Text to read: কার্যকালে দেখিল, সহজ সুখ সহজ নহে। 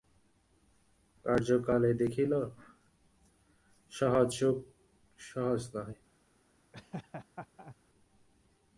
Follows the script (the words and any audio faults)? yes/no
no